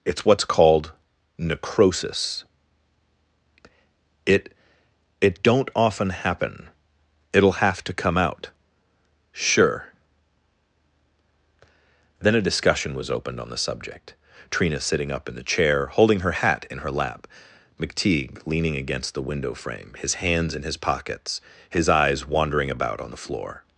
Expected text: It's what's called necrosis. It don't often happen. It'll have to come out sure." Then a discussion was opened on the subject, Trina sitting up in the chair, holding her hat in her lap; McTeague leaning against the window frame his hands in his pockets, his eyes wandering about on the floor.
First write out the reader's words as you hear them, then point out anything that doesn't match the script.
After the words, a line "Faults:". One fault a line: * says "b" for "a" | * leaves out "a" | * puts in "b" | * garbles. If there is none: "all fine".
It's what's called necrosis. It It don't often happen. It'll have to come out sure." Then a discussion was opened on the subject, Trina sitting up in the chair, holding her hat in her lap; McTeague leaning against the window frame his hands in his pockets, his eyes wandering about on the floor.
Faults:
* puts in "It"